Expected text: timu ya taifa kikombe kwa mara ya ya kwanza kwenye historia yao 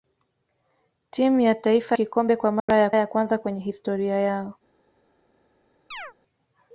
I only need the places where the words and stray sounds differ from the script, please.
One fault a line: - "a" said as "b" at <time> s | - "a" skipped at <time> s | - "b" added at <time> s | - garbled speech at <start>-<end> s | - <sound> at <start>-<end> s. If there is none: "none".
- dropout at 2.6-2.7 s
- chirp at 5.9-6.1 s